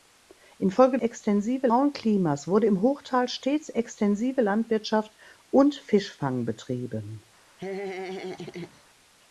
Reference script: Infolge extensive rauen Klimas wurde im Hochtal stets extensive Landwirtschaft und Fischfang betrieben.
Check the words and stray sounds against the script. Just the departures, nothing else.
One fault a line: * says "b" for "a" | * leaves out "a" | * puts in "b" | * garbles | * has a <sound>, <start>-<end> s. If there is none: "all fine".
* has a laugh, 7.6-8.8 s